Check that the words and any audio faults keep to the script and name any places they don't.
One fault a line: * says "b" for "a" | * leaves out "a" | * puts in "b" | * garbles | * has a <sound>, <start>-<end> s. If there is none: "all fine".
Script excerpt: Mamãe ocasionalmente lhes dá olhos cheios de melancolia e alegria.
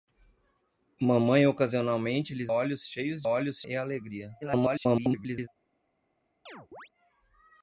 * leaves out "dá"
* says "olhos" for "melancolia"
* garbles
* has a chirp, 6.5-6.9 s